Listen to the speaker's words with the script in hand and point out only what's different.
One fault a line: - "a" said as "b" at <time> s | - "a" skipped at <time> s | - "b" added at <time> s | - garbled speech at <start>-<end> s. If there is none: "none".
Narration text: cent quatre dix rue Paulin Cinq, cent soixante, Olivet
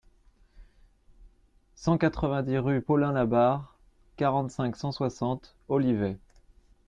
- "vingt" added at 2.3 s
- "Labarre quarante" added at 3.1 s